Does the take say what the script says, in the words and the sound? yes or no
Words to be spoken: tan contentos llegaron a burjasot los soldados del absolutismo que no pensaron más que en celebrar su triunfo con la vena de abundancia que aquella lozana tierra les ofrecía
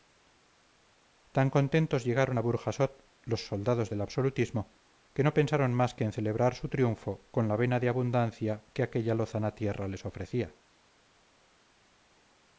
yes